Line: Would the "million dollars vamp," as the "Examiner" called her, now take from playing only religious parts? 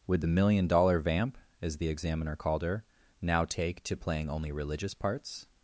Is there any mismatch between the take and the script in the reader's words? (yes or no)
yes